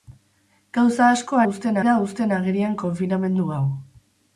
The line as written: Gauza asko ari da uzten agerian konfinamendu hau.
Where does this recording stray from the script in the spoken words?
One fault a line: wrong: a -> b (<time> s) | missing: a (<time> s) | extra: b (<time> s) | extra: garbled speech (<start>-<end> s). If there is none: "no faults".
wrong: ari -> uzten (1.5 s)